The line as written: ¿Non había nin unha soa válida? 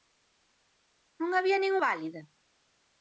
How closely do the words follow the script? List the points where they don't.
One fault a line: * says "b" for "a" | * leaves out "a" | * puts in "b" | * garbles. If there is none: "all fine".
* leaves out "unha soa"